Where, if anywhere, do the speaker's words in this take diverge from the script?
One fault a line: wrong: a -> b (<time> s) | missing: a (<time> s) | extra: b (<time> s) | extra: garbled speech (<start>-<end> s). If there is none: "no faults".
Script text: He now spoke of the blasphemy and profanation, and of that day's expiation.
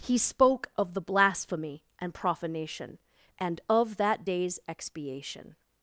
missing: now (0.2 s)